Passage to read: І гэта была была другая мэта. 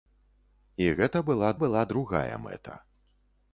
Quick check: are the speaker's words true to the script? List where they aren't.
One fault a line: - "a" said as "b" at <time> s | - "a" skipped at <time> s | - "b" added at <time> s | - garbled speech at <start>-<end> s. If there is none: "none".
none